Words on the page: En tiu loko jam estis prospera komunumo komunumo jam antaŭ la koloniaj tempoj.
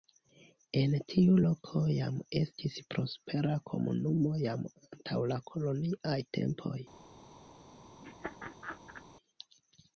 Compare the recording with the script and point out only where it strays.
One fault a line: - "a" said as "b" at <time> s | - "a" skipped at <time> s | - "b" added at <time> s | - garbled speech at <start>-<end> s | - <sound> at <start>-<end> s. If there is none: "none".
- "komunumo" skipped at 4.3 s
- laugh at 8.0-9.0 s